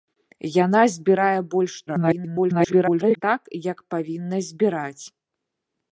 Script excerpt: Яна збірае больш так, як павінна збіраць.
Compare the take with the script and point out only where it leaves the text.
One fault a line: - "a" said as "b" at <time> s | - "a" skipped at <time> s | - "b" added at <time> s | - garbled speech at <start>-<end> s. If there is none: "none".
- garbled speech at 1.9-3.2 s